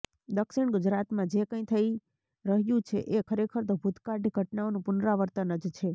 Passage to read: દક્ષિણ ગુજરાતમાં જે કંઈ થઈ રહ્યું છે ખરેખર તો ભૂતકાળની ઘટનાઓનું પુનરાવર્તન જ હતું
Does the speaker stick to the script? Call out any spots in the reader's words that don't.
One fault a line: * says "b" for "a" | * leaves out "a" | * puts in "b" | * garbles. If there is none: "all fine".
* puts in "એ"
* says "છે" for "હતું"